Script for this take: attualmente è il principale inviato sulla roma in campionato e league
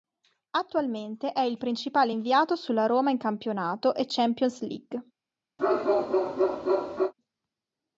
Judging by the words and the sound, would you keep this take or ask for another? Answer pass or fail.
fail